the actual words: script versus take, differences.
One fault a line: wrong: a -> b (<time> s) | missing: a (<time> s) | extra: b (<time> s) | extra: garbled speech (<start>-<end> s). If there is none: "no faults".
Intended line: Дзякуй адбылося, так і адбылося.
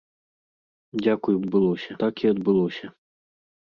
no faults